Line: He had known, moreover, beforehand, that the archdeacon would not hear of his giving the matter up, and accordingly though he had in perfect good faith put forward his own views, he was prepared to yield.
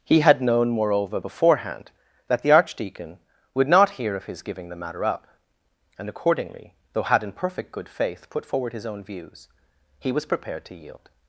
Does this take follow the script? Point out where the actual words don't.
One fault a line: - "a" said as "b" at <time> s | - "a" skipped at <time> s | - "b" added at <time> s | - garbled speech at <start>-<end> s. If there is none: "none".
- "he" skipped at 7.0 s